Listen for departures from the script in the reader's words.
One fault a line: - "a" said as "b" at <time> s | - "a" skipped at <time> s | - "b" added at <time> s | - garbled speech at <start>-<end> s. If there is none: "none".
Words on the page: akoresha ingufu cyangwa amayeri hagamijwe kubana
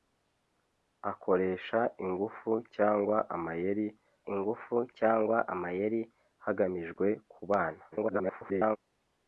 - "ingufu cyangwa amayeri" added at 4.3 s
- garbled speech at 7.9-8.8 s